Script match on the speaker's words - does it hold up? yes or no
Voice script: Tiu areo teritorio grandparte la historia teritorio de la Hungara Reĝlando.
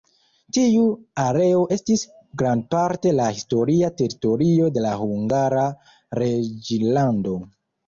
no